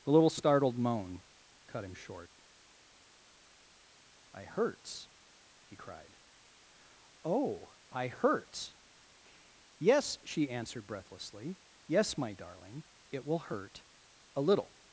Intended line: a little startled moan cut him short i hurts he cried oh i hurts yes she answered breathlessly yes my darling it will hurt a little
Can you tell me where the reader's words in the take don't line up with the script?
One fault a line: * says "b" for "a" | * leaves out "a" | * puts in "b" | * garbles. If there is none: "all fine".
* says "the" for "a"